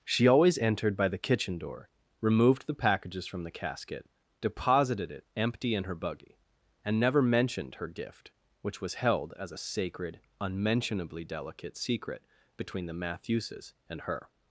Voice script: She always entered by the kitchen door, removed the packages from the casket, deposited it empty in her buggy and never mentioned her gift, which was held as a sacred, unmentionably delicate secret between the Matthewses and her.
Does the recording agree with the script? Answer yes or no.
yes